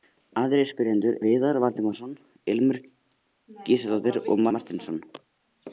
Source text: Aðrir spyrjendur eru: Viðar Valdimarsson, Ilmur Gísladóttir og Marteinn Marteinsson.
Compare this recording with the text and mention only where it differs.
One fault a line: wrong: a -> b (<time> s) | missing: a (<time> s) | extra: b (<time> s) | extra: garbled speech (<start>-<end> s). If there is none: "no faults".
missing: eru (1.2 s)
missing: Marteinn (4.5 s)